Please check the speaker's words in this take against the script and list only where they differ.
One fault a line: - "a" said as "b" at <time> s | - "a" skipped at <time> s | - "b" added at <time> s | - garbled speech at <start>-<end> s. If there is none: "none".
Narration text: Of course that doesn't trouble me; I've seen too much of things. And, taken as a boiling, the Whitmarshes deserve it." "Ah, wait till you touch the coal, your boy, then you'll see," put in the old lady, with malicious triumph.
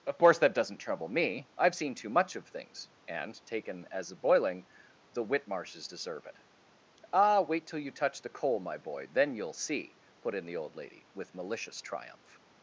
- "your" said as "my" at 8.6 s